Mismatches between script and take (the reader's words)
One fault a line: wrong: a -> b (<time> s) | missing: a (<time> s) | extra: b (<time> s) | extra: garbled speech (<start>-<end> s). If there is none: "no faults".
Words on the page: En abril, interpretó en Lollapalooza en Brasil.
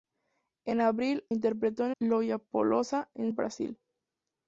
no faults